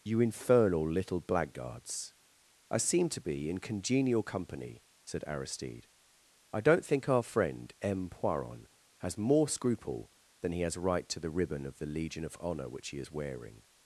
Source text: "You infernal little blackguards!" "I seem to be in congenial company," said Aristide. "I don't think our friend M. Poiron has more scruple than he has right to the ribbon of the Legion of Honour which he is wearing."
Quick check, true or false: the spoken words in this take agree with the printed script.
true